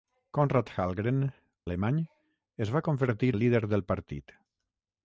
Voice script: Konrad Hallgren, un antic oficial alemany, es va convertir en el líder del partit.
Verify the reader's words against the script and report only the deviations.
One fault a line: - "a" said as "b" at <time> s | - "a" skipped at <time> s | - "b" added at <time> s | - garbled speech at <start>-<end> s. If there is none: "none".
- "un antic oficial" skipped at 1.2 s
- "en" skipped at 3.3 s